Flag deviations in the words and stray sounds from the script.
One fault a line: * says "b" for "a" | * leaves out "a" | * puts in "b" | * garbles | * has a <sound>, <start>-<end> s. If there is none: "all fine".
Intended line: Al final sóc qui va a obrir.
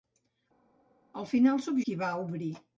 all fine